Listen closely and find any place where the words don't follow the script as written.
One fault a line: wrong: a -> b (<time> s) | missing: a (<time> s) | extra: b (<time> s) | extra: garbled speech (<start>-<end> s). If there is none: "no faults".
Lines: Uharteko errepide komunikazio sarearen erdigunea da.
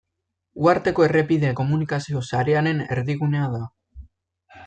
no faults